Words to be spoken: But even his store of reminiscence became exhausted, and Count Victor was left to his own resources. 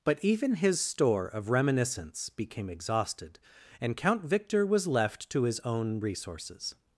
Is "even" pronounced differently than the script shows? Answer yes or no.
no